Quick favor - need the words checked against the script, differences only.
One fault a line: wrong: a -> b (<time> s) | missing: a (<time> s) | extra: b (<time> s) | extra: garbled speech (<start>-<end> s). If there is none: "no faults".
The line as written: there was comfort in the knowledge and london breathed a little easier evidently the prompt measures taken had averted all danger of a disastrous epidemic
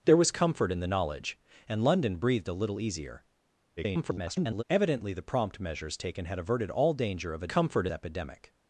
extra: garbled speech (3.8-4.6 s)
wrong: disastrous -> comfort (7.5 s)